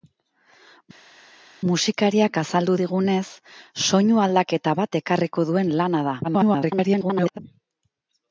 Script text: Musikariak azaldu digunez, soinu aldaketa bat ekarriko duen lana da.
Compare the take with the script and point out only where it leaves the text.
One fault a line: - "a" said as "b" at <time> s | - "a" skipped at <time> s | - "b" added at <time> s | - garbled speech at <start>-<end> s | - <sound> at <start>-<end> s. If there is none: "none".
- garbled speech at 6.2-7.4 s